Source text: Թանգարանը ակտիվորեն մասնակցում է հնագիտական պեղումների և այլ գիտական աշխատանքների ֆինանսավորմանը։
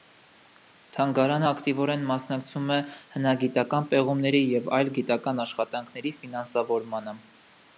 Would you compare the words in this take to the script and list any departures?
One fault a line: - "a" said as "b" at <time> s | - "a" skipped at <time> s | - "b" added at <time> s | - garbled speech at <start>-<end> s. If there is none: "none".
none